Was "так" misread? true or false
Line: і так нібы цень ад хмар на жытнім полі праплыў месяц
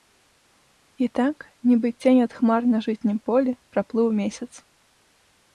false